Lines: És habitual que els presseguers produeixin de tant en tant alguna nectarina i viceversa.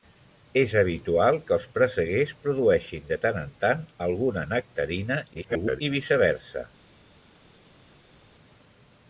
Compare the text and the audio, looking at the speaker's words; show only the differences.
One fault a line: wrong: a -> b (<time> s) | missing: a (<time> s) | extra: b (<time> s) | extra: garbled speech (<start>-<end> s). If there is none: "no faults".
extra: garbled speech (5.3-5.8 s)